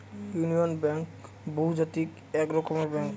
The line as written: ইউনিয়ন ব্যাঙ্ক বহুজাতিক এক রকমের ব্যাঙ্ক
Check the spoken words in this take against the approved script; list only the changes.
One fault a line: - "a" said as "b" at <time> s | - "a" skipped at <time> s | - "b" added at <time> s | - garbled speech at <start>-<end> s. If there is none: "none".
none